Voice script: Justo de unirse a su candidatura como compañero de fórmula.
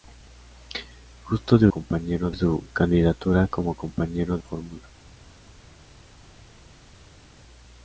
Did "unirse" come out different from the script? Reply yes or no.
yes